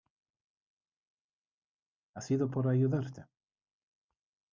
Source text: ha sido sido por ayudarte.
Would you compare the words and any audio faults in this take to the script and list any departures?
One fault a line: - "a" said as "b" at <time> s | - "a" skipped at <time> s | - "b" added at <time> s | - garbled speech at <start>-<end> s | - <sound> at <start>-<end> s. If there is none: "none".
- "sido" skipped at 2.5 s